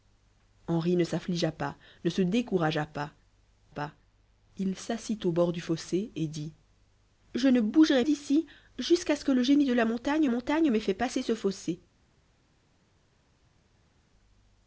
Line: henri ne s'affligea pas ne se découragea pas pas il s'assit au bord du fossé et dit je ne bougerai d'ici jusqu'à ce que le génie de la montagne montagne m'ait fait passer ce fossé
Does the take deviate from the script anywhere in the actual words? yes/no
no